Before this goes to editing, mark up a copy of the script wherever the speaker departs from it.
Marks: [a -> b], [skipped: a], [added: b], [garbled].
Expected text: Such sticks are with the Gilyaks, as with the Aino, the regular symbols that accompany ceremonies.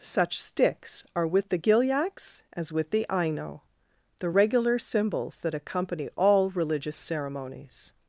Such sticks are with the Gilyaks, as with the Aino, the regular symbols that accompany [added: all religious] ceremonies.